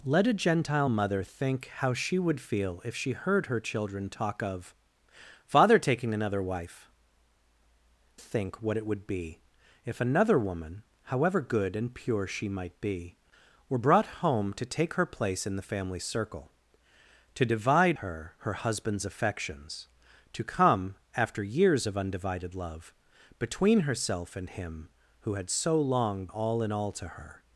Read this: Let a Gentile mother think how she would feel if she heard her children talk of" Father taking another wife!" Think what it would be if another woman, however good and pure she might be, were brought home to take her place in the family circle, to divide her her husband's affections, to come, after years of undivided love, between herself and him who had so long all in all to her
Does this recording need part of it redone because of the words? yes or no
no